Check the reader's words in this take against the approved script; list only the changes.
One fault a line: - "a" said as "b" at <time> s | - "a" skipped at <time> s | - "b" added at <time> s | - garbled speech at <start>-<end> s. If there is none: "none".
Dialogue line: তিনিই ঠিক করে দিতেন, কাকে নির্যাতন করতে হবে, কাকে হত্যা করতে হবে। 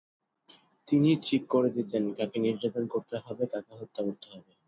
none